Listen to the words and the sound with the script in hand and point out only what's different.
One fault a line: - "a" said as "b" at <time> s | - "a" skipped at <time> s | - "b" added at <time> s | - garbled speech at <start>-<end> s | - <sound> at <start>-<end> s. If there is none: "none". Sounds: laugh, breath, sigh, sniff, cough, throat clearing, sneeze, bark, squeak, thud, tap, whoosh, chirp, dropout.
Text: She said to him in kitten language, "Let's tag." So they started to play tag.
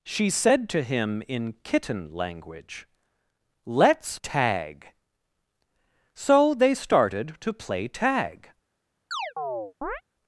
- chirp at 9.1-10.0 s